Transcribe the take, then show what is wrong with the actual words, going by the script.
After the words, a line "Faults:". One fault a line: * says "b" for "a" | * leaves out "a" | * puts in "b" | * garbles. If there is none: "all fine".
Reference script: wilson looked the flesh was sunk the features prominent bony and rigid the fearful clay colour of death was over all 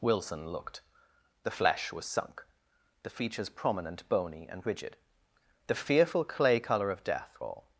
wilson looked the flesh was sunk the features prominent bony and rigid the fearful clay colour of death all
Faults:
* leaves out "was over"